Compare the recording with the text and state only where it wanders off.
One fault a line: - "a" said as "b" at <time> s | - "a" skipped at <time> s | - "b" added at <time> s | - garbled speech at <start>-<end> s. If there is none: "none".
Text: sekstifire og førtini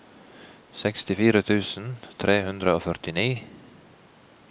- "tusen tre hundre" added at 1.5 s